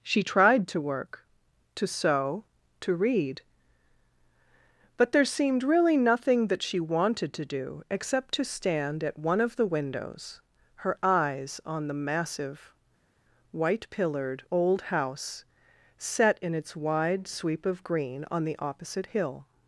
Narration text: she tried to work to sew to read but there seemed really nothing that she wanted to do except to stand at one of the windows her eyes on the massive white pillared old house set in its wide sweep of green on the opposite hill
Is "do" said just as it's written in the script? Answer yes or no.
yes